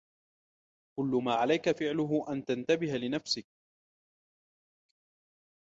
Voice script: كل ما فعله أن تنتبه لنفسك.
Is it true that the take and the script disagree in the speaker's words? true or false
true